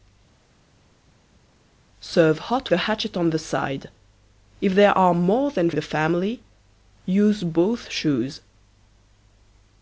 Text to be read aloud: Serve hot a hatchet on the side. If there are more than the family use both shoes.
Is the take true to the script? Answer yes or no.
yes